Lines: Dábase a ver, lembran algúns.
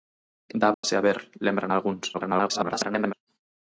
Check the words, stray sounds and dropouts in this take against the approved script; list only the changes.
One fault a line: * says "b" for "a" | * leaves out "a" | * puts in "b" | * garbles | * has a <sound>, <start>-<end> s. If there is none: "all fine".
* has a dropout, 0.7-0.8 s
* garbles